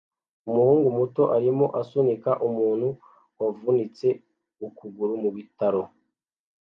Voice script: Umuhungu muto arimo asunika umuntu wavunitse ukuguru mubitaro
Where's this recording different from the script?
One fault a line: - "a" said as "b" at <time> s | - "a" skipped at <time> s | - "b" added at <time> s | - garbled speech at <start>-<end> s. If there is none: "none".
none